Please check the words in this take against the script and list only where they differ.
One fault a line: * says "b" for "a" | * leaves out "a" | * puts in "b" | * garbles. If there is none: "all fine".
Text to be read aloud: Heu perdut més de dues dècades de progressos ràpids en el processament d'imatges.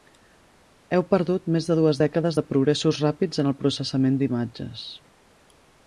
all fine